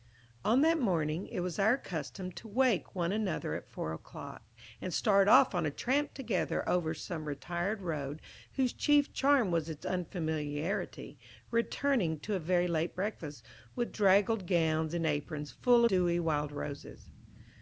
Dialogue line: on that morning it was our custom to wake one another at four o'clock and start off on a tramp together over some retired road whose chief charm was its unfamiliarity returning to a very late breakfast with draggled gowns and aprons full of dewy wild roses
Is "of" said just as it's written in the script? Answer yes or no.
no